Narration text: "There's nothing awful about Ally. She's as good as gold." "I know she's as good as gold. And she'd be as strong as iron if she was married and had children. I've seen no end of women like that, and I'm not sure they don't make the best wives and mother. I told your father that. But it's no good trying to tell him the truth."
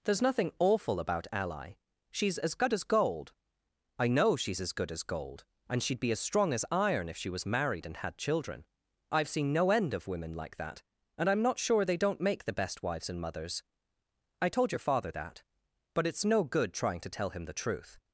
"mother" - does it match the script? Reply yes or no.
no